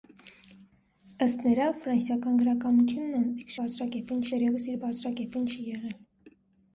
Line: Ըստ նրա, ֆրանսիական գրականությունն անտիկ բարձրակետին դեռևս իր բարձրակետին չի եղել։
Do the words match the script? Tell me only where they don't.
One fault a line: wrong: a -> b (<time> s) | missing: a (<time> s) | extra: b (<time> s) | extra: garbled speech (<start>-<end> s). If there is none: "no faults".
no faults